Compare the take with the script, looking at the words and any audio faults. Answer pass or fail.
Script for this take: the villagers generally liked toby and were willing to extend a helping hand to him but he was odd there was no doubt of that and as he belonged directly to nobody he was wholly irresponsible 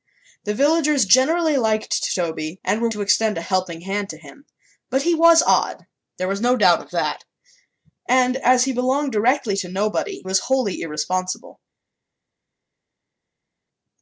fail